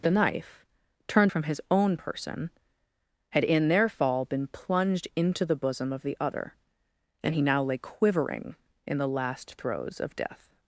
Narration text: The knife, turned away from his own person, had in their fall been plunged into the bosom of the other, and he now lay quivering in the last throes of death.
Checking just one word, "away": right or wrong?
wrong